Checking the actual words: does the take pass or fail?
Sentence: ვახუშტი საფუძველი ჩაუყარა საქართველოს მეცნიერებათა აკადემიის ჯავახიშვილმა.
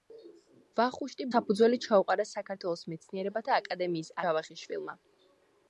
pass